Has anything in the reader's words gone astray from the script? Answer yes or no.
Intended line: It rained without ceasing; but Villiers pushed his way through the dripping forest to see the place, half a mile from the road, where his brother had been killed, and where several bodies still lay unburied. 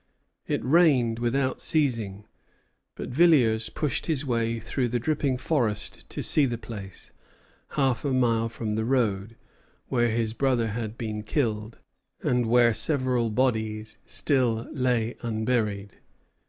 no